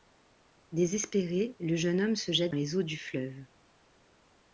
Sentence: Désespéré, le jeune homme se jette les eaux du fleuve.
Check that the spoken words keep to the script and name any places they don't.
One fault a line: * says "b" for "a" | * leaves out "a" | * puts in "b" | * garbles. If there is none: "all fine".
all fine